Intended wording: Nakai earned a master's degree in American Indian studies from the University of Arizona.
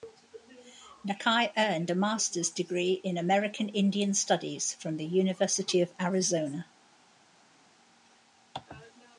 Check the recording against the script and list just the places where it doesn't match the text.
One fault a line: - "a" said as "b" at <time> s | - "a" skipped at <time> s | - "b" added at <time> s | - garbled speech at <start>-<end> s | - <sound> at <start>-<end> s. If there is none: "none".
none